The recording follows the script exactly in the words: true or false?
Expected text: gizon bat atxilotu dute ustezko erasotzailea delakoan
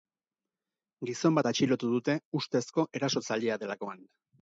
true